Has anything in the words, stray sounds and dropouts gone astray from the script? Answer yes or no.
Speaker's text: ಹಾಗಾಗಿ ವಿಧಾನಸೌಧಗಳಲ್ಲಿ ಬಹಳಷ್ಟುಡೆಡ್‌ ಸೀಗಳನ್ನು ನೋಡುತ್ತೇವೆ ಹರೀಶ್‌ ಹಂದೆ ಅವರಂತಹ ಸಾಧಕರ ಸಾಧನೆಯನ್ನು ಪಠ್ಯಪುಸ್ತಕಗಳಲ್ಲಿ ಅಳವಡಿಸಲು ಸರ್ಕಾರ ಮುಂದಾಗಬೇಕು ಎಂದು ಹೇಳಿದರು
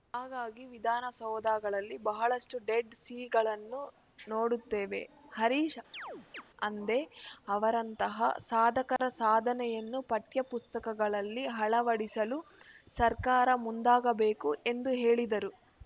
yes